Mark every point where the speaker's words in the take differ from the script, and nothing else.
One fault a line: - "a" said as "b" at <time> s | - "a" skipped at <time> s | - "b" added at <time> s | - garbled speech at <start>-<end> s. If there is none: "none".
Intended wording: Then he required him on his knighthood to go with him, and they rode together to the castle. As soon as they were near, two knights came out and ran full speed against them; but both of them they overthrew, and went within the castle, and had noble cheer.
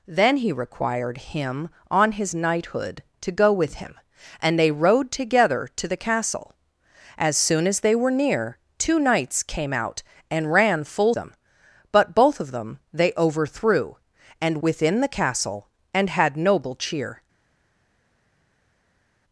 - "speed against" skipped at 11.1 s
- "went" skipped at 14.6 s